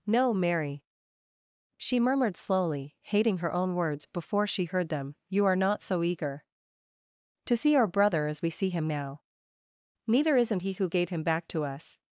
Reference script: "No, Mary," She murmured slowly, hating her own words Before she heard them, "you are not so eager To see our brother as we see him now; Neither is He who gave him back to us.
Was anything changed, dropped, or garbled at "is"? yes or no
yes